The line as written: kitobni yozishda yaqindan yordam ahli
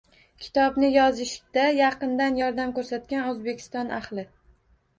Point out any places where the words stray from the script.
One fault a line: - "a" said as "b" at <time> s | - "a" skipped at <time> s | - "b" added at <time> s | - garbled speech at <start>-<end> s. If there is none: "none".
- "ko`rsatgan o`zbekiston" added at 2.8 s